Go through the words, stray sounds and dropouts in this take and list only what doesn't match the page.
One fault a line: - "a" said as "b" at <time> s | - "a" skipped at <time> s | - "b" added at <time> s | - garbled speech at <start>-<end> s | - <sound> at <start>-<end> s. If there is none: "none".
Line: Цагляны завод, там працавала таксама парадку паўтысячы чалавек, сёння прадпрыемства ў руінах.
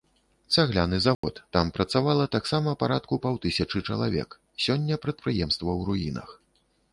- dropout at 1.1-1.2 s